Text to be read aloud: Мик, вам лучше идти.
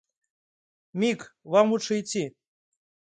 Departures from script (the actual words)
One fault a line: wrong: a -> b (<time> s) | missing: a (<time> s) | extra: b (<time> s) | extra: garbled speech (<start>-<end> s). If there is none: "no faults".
no faults